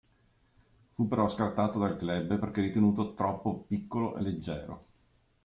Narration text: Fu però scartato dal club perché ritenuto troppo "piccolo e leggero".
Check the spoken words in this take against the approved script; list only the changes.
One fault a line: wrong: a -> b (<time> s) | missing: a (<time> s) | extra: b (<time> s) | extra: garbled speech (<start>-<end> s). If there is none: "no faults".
no faults